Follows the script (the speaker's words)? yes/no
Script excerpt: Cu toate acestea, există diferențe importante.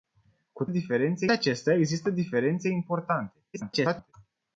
no